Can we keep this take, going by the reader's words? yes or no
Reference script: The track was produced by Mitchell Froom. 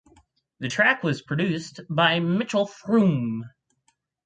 yes